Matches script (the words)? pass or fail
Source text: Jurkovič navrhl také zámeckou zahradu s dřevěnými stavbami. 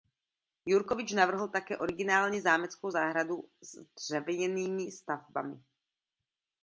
fail